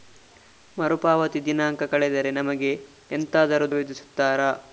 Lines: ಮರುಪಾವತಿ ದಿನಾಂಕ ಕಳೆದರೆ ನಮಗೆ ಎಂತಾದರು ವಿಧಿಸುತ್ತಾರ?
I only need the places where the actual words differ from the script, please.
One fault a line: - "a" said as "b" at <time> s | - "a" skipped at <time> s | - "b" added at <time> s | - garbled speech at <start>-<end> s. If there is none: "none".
none